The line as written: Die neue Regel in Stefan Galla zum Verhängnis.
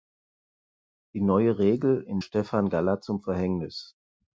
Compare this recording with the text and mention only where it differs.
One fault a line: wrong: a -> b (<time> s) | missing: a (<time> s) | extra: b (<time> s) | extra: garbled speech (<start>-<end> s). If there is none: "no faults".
no faults